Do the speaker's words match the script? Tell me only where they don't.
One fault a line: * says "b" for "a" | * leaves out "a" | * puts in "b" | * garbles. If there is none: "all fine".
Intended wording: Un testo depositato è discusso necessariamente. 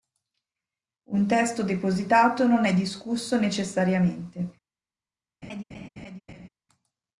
* puts in "non"